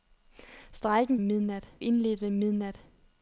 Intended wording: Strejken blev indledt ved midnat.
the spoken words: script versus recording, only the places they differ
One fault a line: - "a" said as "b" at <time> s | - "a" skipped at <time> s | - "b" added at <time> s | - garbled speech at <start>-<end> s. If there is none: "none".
- "blev" said as "midnat" at 1.2 s